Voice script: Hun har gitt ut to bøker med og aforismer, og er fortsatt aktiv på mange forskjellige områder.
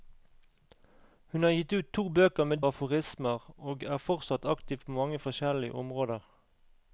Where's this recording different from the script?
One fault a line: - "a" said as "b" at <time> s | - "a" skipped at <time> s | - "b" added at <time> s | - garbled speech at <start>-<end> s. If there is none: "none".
none